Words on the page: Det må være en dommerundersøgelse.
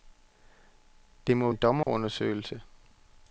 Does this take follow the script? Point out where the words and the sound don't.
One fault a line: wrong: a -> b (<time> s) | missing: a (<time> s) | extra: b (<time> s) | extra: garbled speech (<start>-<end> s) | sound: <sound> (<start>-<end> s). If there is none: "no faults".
missing: være (1.5 s)
sound: dropout (1.8-1.9 s)